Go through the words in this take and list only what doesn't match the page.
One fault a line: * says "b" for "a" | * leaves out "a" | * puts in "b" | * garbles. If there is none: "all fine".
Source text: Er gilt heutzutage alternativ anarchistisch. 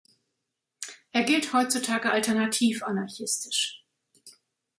all fine